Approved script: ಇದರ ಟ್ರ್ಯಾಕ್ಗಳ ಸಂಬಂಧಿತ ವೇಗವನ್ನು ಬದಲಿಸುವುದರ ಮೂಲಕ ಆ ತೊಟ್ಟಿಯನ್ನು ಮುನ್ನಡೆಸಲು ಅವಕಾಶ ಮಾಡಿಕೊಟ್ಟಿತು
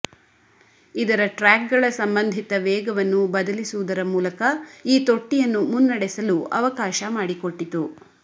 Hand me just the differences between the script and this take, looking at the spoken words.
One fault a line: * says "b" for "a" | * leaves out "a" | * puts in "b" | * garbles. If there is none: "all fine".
* says "ಈ" for "ಆ"